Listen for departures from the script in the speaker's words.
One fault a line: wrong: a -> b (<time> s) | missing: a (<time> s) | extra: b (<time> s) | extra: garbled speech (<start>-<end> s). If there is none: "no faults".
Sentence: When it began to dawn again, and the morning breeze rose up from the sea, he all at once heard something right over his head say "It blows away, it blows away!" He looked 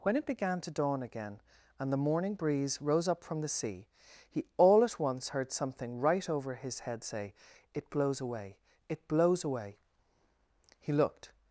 no faults